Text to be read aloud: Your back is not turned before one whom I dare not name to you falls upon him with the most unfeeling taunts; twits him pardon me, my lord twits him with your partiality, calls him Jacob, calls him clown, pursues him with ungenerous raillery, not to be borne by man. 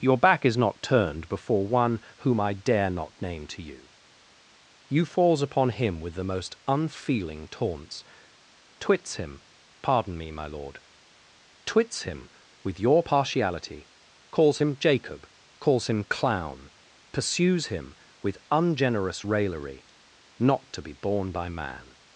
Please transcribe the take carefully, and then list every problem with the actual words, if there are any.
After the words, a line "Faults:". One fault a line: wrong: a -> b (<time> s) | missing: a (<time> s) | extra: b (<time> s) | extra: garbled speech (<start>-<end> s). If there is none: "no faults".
Your back is not turned before one whom I dare not name to you you falls upon him with the most unfeeling taunts; twits him pardon me, my lord twits him with your partiality, calls him Jacob, calls him clown, pursues him with ungenerous raillery, not to be borne by man.
Faults:
extra: you (4.9 s)